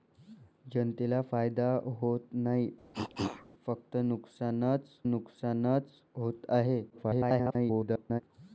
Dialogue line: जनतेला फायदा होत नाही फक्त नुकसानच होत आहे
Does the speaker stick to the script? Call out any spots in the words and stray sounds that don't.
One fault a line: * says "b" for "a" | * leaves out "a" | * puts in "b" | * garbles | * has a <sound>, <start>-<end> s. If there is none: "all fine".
* has a cough, 2.9-3.5 s
* puts in "नुकसानच"
* garbles